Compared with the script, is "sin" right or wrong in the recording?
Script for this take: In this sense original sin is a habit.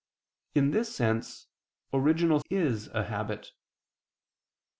wrong